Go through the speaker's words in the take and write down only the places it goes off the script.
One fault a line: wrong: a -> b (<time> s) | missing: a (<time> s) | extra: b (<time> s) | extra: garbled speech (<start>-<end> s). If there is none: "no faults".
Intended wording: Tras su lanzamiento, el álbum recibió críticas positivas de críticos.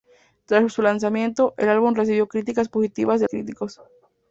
no faults